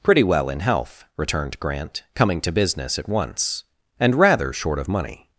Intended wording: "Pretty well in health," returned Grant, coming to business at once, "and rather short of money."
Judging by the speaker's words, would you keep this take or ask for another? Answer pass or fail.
pass